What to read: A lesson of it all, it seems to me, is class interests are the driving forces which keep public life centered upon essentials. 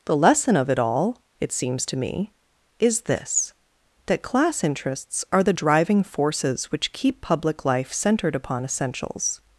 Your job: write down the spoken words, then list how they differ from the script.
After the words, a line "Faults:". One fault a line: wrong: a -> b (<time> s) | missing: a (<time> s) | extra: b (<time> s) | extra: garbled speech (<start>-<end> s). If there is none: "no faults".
The lesson of it all, it seems to me, is this: that class interests are the driving forces which keep public life centered upon essentials.
Faults:
wrong: A -> The (0.1 s)
extra: this that (3.0 s)